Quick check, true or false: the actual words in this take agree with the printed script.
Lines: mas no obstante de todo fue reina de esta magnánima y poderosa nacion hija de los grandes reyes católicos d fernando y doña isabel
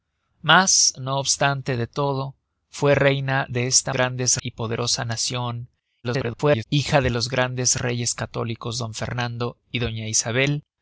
false